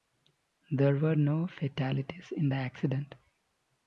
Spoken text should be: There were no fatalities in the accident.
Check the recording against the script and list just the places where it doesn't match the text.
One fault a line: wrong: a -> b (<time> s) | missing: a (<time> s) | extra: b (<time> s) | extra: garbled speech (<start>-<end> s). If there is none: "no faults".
no faults